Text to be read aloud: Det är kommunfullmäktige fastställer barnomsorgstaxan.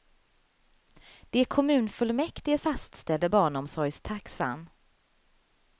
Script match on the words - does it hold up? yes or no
yes